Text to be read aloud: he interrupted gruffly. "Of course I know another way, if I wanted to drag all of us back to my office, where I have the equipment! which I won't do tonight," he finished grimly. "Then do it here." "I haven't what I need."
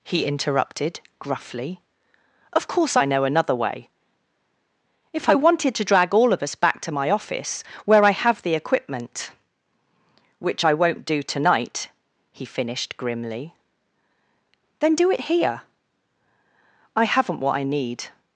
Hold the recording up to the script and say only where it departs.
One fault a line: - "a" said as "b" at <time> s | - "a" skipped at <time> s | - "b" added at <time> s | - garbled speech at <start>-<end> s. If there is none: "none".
none